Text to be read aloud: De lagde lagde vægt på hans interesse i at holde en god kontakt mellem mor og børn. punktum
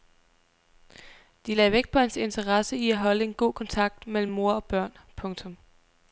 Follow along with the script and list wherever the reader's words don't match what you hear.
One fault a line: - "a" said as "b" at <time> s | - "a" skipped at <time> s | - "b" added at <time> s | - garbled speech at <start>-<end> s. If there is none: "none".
- "lagde" skipped at 1.7 s